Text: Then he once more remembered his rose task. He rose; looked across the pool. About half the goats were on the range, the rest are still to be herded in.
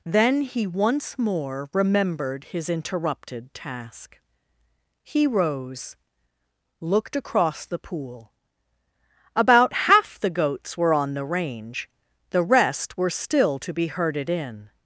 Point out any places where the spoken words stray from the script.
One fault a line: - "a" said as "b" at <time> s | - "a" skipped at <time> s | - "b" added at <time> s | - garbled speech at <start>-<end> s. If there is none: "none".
- "rose" said as "interrupted" at 2.7 s
- "are" said as "were" at 13.0 s